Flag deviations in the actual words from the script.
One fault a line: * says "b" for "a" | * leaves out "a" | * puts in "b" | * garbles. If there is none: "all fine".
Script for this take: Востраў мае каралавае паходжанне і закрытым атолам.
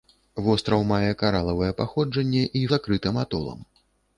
all fine